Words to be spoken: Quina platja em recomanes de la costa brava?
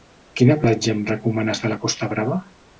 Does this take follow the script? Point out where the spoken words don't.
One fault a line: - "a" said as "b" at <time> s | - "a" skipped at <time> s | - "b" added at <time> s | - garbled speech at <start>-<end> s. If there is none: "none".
none